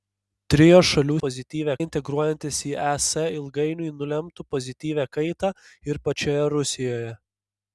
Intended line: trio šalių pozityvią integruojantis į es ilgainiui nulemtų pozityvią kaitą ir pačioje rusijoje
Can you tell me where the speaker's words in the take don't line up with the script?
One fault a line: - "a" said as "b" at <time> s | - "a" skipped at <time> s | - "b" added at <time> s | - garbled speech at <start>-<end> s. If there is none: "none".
none